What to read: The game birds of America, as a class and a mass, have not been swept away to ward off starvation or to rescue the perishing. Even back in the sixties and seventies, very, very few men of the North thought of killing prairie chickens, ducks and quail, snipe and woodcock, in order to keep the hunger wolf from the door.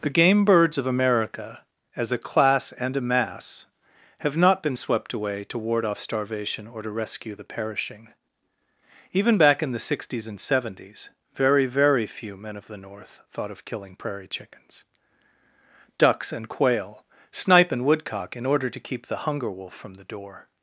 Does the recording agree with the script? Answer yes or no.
yes